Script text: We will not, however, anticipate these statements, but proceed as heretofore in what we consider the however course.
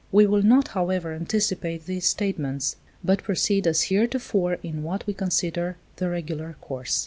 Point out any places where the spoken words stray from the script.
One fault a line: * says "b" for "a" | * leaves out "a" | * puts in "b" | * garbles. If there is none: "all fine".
* says "regular" for "however"